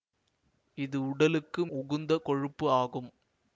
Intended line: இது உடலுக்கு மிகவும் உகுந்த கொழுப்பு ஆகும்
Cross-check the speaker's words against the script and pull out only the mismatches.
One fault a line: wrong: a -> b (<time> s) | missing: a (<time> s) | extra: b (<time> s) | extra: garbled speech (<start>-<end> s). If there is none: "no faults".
missing: மிகவும் (1.6 s)